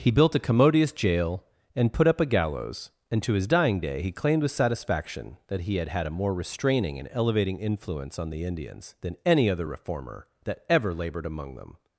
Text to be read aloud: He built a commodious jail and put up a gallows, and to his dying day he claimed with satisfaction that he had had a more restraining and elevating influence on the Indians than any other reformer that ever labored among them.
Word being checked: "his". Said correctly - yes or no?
yes